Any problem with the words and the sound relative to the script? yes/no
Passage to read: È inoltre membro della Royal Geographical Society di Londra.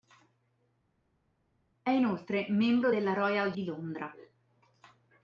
yes